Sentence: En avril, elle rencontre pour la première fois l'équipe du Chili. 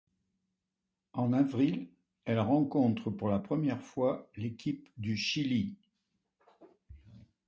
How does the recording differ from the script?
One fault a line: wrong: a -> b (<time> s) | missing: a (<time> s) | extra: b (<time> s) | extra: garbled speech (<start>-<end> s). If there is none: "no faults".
no faults